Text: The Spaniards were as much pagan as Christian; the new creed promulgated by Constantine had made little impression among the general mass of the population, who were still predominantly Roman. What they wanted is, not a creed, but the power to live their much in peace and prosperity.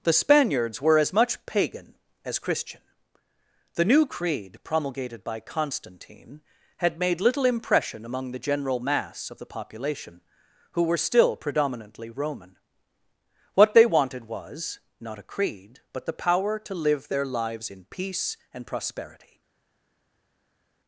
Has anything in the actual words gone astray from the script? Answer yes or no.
yes